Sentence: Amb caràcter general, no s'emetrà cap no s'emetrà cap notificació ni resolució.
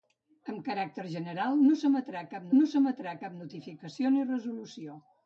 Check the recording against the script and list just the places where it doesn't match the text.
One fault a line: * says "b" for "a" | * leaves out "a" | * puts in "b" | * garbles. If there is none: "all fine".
all fine